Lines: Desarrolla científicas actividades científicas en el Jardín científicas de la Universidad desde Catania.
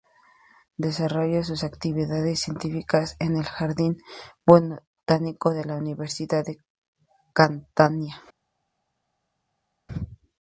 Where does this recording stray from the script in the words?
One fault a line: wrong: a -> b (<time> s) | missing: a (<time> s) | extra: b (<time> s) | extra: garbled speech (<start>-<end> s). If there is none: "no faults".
wrong: científicas -> sus (1.4 s)
wrong: científicas -> botánico (4.5 s)
wrong: desde -> de (6.4 s)